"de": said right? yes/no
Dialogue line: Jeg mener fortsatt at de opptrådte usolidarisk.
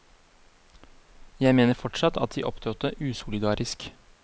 yes